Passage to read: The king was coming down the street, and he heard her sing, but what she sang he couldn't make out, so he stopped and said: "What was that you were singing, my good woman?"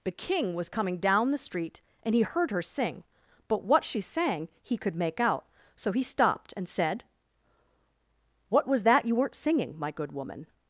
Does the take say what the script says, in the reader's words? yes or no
no